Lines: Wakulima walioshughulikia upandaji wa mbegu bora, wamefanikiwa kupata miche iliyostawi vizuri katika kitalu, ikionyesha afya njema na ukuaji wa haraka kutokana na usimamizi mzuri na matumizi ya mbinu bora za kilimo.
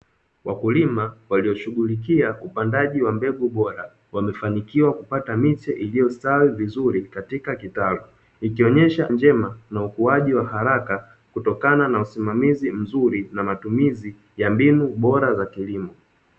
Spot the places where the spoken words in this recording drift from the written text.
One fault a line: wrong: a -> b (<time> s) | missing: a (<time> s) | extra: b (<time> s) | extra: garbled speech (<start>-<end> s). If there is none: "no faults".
missing: afya (9.1 s)